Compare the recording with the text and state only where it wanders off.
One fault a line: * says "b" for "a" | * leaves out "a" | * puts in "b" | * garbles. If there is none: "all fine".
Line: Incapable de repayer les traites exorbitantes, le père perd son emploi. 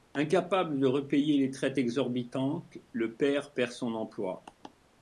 all fine